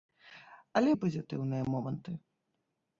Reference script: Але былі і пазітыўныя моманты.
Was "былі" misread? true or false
true